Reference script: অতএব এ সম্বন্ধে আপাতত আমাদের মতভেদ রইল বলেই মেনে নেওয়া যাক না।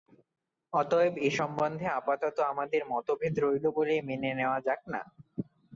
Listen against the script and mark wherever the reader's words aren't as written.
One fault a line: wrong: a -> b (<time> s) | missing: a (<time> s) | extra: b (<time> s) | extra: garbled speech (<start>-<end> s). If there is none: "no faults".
no faults